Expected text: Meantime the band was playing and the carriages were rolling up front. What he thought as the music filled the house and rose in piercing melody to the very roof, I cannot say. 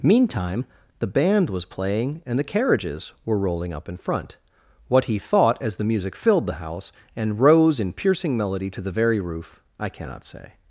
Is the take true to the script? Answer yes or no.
no